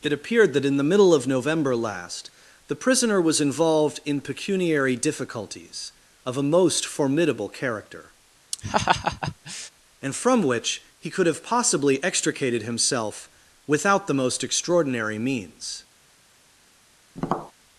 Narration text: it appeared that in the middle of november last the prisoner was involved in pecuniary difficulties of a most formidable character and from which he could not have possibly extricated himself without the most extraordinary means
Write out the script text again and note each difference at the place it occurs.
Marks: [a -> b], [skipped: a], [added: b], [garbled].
it appeared that in the middle of november last the prisoner was involved in pecuniary difficulties of a most formidable character and from which he could [skipped: not] have possibly extricated himself without the most extraordinary means